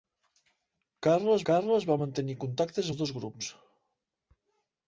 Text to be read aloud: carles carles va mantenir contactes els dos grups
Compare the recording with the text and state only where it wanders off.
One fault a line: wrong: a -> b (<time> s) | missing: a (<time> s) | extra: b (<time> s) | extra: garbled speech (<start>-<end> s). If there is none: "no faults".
no faults